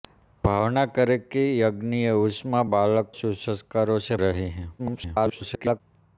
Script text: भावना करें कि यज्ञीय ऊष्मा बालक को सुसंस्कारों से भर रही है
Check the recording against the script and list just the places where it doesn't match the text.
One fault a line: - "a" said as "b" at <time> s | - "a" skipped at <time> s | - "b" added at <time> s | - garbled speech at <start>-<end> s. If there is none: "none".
- "को" skipped at 3.1 s
- "भर" skipped at 4.2 s
- garbled speech at 4.8-5.8 s